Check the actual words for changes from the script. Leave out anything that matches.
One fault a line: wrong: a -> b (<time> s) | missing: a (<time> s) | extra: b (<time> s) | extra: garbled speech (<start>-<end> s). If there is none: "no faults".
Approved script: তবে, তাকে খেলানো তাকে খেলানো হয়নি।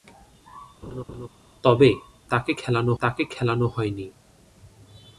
no faults